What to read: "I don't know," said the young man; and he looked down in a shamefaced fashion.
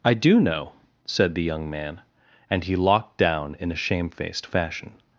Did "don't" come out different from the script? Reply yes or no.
yes